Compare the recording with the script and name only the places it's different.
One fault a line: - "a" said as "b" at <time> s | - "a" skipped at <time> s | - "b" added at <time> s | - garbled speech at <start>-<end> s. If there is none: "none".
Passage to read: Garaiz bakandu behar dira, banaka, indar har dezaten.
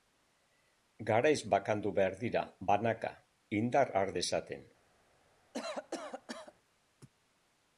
none